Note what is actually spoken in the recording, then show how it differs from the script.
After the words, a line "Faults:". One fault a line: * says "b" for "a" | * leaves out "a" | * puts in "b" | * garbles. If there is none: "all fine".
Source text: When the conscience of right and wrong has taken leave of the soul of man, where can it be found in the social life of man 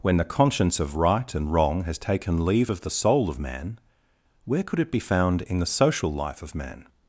When the conscience of right and wrong has taken leave of the soul of man, where could it be found in the social life of man
Faults:
* says "could" for "can"